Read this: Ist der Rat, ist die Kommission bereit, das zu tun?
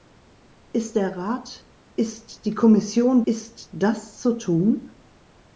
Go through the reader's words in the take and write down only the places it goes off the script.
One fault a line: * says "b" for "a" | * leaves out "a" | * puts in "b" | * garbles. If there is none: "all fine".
* says "ist" for "bereit"